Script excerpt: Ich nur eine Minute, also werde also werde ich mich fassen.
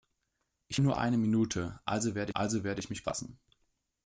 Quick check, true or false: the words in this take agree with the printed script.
true